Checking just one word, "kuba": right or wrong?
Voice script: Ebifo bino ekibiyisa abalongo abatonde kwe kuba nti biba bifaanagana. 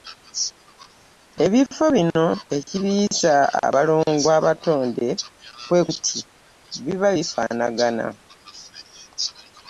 wrong